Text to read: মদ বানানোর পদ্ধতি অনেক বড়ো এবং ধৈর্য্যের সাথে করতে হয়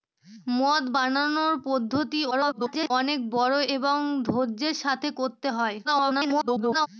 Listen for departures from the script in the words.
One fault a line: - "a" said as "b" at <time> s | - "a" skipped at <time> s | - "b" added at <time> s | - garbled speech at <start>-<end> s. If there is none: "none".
- garbled speech at 2.3-2.9 s
- garbled speech at 5.8-6.9 s